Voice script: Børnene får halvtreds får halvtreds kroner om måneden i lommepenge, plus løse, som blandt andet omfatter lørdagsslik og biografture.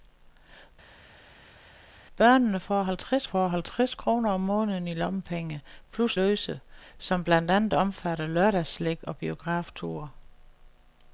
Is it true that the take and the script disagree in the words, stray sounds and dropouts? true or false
false